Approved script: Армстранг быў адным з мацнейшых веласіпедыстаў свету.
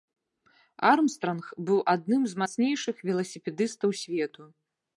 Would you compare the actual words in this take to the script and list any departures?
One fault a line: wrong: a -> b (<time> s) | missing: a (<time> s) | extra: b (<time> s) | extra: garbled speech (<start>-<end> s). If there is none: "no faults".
no faults